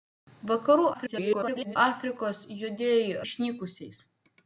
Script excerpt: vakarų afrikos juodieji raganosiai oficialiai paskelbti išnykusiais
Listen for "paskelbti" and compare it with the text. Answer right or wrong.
wrong